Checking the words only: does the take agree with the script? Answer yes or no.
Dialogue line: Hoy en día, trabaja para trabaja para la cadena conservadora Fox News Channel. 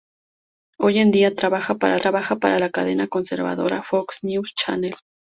yes